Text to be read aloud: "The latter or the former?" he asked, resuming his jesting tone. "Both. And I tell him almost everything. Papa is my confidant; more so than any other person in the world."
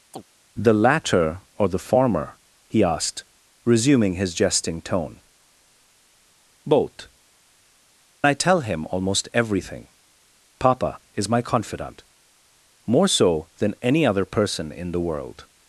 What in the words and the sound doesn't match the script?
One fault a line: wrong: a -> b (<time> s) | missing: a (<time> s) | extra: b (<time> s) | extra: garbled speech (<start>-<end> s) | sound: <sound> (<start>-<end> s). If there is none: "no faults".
sound: chirp (0.1-0.2 s)
missing: And (7.1 s)